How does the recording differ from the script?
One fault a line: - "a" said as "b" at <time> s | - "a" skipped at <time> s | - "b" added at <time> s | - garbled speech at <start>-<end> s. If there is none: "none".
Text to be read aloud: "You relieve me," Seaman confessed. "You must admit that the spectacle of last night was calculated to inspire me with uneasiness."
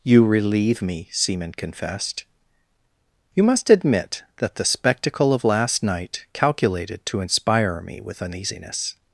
- "was" skipped at 6.3 s